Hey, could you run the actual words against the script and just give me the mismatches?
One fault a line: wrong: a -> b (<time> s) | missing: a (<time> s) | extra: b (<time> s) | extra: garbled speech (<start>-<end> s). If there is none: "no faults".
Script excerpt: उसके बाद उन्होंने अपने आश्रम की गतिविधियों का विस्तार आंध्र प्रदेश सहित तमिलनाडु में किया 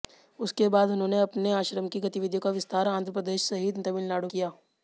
missing: में (4.3 s)